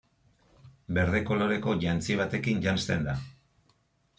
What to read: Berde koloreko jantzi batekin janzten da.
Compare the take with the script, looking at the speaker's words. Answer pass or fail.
pass